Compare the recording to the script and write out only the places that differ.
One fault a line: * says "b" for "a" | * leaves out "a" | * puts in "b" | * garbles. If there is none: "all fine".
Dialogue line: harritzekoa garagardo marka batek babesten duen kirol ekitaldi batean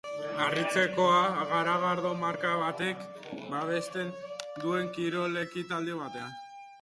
all fine